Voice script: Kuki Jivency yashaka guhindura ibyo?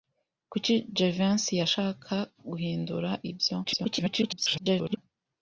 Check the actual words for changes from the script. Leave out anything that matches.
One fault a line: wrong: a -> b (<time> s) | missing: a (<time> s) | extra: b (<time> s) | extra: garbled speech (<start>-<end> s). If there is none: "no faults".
extra: garbled speech (3.6-5.0 s)